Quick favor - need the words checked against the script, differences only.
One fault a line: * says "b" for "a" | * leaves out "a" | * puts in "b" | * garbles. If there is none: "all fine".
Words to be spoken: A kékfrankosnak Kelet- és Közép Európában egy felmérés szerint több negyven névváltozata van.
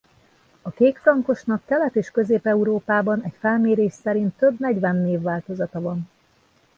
all fine